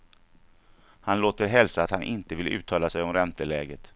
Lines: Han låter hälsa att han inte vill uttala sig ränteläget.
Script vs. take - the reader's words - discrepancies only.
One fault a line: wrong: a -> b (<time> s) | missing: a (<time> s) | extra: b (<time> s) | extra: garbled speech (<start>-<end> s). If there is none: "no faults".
extra: om (3.0 s)